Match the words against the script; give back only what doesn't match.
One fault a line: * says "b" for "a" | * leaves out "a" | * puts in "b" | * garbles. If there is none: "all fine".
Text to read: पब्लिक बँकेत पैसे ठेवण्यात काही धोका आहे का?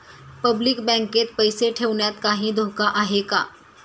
all fine